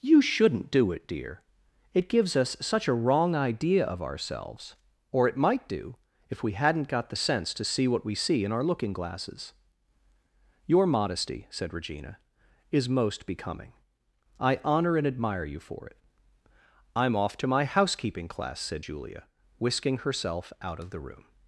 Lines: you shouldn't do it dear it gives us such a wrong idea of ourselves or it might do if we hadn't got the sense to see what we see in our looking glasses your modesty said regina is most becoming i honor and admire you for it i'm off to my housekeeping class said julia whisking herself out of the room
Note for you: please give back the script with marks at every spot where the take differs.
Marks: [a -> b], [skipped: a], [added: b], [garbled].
you shouldn't do it dear it gives us such a wrong idea of ourselves or it might do if we hadn't got the sense to see what we see in our looking glasses your modesty said regina is most becoming i honor and admire you for it i'm off to my housekeeping class said julia whisking herself out of the room